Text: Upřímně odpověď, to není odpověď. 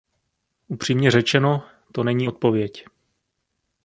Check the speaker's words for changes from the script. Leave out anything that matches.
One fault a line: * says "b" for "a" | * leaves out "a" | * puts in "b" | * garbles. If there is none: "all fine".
* says "řečeno" for "odpověď"